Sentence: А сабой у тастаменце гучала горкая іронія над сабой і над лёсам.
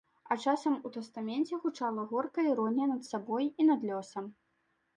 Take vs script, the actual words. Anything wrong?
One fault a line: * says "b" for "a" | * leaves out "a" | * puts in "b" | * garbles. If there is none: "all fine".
* says "часам" for "сабой"